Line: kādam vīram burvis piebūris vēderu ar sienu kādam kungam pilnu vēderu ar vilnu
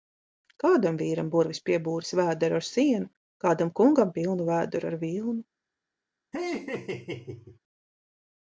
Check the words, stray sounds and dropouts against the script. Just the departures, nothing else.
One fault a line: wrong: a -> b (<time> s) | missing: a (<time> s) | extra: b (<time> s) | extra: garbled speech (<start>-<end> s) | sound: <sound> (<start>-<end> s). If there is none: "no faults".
sound: laugh (6.3-7.6 s)